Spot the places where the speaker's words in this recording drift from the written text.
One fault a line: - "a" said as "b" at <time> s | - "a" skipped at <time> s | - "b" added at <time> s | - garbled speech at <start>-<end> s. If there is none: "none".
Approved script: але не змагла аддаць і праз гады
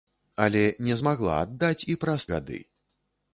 none